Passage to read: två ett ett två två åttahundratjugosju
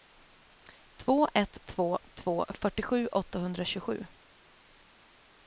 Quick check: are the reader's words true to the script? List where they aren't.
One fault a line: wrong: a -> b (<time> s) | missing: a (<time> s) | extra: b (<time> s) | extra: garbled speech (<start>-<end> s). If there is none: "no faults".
wrong: ett -> två (1.6 s)
wrong: två -> fyrtiosju (2.6 s)